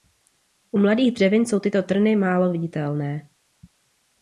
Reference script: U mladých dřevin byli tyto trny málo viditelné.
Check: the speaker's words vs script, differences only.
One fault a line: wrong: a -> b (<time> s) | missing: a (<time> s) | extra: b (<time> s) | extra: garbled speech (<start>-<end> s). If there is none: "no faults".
wrong: byli -> jsou (1.4 s)